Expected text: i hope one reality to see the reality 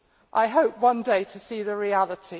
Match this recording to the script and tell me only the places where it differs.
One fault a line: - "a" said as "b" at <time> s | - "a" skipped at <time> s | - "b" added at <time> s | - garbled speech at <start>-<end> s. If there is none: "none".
- "reality" said as "day" at 1.0 s